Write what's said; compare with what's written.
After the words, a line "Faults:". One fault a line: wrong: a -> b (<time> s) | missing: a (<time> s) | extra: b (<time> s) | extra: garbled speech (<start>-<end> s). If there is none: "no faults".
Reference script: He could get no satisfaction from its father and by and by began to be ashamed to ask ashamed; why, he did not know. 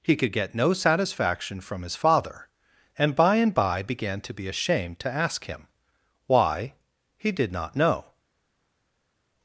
He could get no satisfaction from his father and by and by began to be ashamed to ask him; why, he did not know.
Faults:
wrong: its -> his (1.8 s)
wrong: ashamed -> him (5.4 s)